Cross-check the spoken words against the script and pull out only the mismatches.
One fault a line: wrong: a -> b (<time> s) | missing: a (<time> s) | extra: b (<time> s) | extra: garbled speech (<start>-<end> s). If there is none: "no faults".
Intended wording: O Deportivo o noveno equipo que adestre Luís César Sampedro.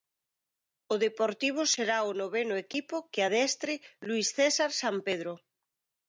extra: será (1.7 s)